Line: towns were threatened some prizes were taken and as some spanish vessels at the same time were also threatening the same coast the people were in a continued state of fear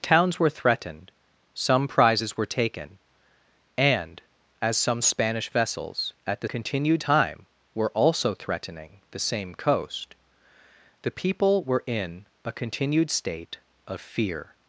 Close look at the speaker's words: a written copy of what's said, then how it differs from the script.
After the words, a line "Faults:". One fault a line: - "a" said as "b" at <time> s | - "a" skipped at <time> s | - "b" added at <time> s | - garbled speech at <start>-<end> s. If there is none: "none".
towns were threatened some prizes were taken and as some spanish vessels at the continued time were also threatening the same coast the people were in a continued state of fear
Faults:
- "same" said as "continued" at 6.4 s